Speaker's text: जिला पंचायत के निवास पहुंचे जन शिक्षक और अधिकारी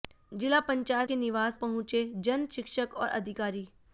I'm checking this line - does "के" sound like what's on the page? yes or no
yes